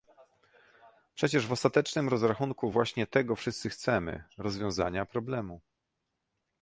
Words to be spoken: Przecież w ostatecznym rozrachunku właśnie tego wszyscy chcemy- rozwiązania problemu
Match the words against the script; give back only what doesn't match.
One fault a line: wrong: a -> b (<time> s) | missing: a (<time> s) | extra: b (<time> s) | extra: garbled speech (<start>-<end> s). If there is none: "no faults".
no faults